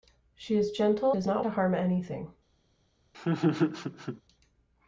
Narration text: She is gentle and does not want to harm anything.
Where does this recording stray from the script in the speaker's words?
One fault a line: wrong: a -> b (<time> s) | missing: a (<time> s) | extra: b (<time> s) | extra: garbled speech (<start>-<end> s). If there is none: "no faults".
missing: and (1.1 s)
missing: want (1.5 s)